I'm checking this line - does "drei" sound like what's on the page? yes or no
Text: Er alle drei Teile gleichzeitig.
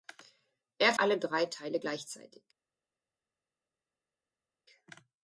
yes